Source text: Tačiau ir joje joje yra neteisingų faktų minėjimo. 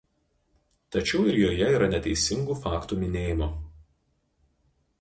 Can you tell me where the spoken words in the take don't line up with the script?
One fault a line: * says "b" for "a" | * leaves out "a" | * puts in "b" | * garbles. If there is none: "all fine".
* leaves out "joje"